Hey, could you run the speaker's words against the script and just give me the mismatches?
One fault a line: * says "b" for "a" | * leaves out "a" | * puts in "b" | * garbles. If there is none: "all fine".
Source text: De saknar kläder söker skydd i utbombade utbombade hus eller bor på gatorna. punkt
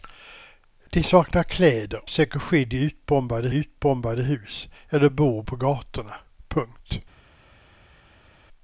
all fine